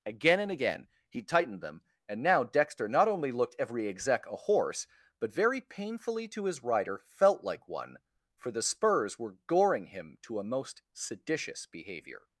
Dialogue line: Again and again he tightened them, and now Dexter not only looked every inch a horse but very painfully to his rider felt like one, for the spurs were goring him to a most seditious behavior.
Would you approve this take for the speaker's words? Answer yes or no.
no